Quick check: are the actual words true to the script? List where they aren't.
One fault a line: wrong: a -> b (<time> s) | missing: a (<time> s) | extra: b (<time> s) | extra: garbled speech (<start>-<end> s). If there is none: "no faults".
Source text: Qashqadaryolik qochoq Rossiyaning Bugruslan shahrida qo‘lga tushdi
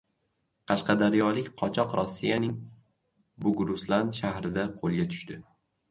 no faults